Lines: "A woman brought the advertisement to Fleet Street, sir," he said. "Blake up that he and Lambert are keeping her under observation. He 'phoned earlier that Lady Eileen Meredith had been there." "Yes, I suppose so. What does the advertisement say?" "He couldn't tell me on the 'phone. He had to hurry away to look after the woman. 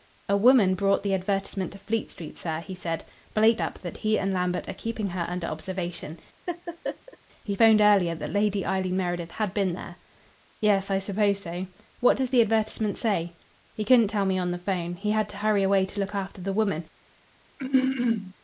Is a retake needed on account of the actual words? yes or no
no